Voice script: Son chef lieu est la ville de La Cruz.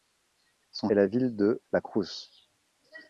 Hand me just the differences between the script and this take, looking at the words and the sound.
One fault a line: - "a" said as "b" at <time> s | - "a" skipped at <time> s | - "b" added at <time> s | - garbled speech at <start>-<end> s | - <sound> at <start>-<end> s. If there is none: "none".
- "chef lieu" skipped at 0.9 s